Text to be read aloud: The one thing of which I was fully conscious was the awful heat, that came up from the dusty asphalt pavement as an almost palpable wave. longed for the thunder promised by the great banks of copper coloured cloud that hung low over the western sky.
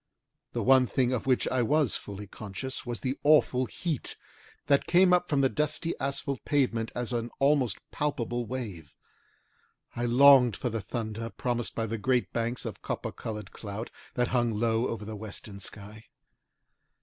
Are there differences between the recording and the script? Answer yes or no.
yes